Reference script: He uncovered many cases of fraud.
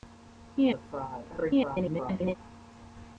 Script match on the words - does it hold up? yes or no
no